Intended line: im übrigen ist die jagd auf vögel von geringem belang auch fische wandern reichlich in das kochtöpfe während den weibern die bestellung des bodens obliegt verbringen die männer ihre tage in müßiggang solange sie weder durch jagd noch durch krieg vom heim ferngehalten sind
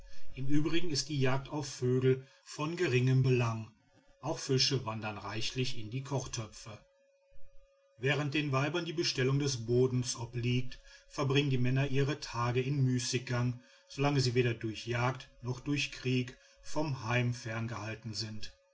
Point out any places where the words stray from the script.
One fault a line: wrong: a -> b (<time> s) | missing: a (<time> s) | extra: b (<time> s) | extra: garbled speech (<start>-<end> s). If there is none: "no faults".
wrong: das -> die (5.9 s)